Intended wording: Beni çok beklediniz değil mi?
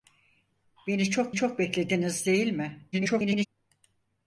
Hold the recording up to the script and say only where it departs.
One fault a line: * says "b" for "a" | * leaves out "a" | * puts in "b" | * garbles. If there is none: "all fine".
* puts in "çok"
* garbles